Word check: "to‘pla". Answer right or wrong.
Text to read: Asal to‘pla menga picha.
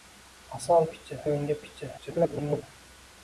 wrong